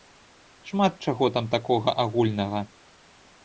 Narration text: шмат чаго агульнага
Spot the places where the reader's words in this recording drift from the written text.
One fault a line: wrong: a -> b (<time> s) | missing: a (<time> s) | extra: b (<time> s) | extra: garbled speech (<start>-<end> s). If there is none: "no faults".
extra: там такога (1.4 s)